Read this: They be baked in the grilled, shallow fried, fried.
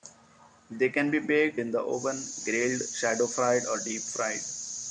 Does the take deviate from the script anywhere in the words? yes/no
yes